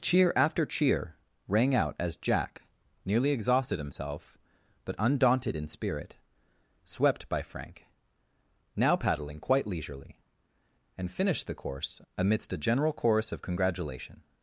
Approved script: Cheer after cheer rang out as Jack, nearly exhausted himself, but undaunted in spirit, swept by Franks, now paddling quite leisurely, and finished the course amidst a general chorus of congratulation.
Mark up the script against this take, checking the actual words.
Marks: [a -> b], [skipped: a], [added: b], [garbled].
Cheer after cheer rang out as Jack, nearly exhausted himself, but undaunted in spirit, swept by [Franks, -> Frank] now paddling quite leisurely, and finished the course amidst a general chorus of congratulation.